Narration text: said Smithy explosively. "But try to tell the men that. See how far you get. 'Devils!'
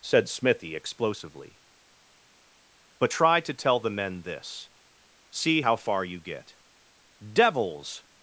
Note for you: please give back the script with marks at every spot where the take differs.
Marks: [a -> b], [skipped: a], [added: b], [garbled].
said Smithy explosively. "But try to tell the men [that. -> this] See how far you get. 'Devils!'